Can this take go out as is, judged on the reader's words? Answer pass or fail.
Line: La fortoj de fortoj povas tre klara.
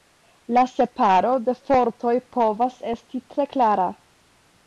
fail